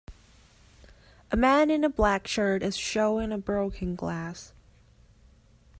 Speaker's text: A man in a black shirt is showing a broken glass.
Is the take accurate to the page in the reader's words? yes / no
yes